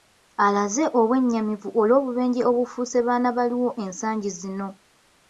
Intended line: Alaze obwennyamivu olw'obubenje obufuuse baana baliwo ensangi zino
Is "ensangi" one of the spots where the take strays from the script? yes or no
no